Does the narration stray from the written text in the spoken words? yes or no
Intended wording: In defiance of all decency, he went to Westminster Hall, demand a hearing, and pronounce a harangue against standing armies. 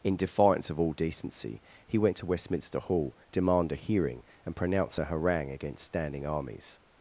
no